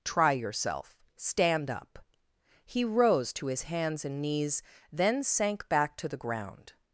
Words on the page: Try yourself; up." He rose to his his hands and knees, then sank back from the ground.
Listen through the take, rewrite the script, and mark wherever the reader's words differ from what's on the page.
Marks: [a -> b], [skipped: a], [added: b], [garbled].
Try yourself; [added: stand] up." He rose to his [skipped: his] hands and knees, then sank back [from -> to] the ground.